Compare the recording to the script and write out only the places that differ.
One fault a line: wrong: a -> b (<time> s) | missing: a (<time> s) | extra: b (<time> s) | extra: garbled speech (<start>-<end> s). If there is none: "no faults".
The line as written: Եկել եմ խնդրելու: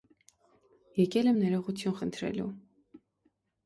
extra: ներողություն (1.4 s)